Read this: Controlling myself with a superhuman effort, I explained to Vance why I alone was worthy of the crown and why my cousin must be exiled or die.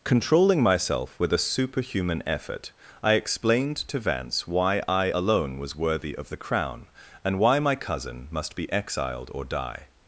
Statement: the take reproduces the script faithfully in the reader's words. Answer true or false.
true